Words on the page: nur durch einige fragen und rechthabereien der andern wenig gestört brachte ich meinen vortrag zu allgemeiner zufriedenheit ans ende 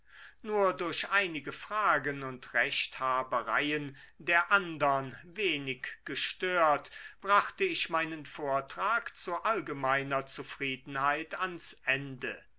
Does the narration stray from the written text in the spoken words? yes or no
no